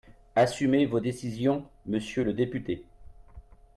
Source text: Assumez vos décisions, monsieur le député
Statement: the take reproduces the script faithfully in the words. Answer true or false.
true